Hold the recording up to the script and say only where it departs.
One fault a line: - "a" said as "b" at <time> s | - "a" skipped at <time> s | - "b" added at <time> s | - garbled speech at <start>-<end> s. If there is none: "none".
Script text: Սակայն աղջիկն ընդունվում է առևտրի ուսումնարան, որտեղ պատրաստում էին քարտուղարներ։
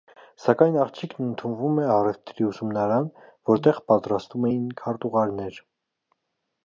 none